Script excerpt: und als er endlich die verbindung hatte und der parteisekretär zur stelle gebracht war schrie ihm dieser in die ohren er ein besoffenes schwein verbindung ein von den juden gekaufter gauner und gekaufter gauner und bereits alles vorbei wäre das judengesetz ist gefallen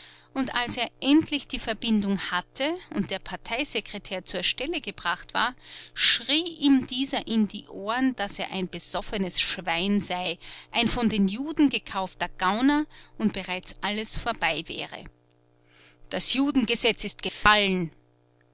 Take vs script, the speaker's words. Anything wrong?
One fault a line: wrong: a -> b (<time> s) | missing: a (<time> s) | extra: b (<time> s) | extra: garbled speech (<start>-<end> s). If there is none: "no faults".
extra: daß (8.2 s)
wrong: verbindung -> sei (10.0 s)
missing: gekaufter gauner und (13.3 s)